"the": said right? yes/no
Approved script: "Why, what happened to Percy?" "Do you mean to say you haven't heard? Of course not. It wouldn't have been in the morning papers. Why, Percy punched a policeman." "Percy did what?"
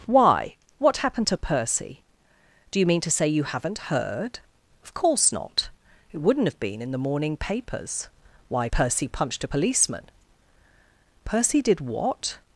yes